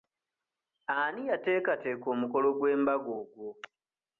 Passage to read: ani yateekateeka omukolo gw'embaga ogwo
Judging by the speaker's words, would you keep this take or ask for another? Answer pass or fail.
pass